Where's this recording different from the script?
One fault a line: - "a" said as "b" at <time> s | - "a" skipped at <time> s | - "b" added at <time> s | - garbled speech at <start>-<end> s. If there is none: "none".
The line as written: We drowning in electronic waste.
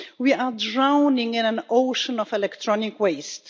- "are" added at 0.3 s
- "an ocean of" added at 1.4 s